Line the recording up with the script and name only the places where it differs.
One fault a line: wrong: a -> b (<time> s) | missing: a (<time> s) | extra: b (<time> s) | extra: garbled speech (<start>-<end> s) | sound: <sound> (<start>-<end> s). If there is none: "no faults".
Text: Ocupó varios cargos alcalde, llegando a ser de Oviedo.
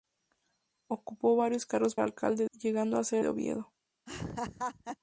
sound: laugh (4.1-5.0 s)